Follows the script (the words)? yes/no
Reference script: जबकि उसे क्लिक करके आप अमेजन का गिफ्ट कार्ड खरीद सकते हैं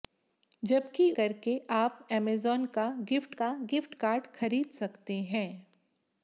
no